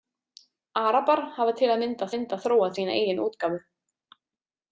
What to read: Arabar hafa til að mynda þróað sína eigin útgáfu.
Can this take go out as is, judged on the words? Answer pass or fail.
fail